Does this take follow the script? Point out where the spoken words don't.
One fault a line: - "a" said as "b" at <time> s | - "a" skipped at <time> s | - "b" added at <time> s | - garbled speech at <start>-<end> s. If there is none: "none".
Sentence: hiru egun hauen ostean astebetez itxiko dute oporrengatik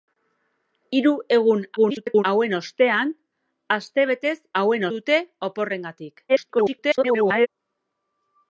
- garbled speech at 1.8-2.2 s
- "itxiko" said as "hauen" at 4.6 s
- garbled speech at 6.3-7.5 s